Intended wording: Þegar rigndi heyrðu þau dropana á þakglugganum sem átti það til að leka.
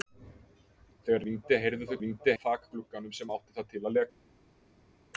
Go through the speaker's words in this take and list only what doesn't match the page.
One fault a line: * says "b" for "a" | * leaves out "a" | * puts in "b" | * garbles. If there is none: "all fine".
* says "rigndi" for "dropana"